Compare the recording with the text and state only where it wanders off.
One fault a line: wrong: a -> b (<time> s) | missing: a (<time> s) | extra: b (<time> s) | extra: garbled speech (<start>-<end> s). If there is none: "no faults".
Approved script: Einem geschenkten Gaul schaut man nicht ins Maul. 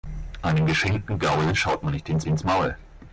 extra: ins (2.3 s)